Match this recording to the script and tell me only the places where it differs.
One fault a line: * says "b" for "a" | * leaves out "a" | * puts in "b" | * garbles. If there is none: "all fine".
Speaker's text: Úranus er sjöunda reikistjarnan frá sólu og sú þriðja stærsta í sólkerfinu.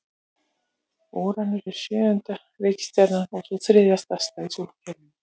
* leaves out "frá sólu"